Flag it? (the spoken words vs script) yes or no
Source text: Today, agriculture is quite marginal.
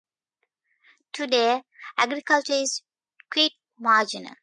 no